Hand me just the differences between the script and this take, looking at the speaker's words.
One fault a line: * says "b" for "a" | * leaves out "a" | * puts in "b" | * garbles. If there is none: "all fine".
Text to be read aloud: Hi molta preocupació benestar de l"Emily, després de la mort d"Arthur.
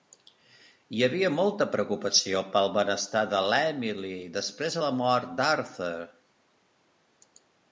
* puts in "havia"
* puts in "pel"